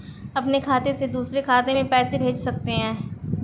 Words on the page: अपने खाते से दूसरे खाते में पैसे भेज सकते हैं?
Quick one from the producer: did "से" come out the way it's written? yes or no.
yes